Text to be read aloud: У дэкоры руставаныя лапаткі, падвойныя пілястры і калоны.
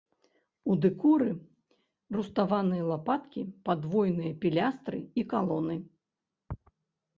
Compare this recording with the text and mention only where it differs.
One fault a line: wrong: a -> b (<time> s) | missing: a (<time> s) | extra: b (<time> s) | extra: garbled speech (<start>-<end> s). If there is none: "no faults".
no faults